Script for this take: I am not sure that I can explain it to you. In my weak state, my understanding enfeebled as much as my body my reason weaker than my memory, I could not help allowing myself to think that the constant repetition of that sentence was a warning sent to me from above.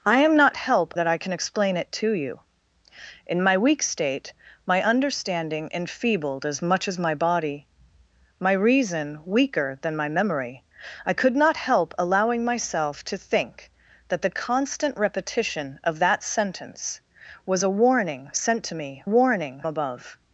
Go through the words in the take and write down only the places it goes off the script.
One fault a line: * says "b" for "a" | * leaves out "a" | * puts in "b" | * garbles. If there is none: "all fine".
* says "help" for "sure"
* says "warning" for "from"